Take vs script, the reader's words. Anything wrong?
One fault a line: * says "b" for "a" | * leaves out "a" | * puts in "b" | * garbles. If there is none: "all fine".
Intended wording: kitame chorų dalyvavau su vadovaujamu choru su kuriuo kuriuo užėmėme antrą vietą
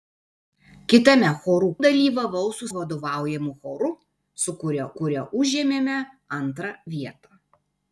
all fine